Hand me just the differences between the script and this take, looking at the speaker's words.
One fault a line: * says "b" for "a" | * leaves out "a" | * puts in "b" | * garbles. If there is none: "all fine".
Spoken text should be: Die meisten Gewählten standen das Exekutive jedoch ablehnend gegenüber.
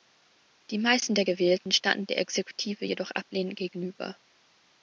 * puts in "der"
* says "der" for "das"